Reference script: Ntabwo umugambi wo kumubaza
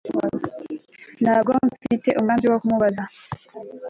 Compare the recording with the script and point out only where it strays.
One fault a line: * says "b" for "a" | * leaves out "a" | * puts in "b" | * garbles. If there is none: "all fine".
* puts in "mfite"